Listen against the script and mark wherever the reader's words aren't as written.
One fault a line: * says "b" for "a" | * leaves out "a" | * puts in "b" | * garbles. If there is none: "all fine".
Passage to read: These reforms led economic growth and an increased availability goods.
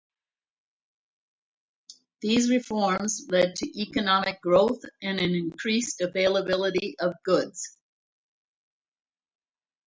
* puts in "to"
* puts in "of"